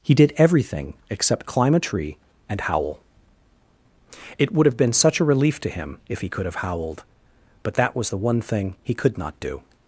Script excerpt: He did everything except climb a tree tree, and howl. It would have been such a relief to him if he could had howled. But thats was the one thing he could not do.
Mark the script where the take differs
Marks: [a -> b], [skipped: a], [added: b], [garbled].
He did everything except climb a tree [skipped: tree,] and howl. It would have been such a relief to him if he could [had -> have] howled. But [thats -> that] was the one thing he could not do.